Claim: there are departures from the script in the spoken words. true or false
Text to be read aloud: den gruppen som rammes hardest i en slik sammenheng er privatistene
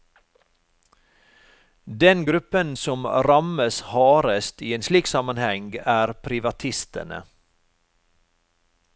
false